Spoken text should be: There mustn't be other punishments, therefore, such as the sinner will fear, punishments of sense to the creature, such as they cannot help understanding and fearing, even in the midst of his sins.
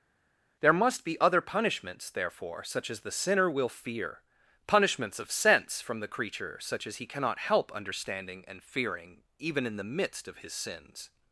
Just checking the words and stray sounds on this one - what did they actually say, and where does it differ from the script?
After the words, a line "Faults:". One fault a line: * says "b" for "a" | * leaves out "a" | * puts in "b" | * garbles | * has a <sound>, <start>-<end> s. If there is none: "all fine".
There must be other punishments, therefore, such as the sinner will fear, punishments of sense from the creature, such as he cannot help understanding and fearing, even in the midst of his sins.
Faults:
* says "must" for "mustn't"
* says "from" for "to"
* says "he" for "they"